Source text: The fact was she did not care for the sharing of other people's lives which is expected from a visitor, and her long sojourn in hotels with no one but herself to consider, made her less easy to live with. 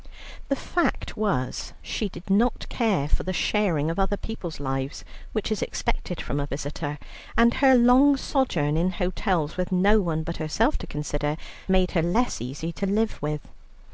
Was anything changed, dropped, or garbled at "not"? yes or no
no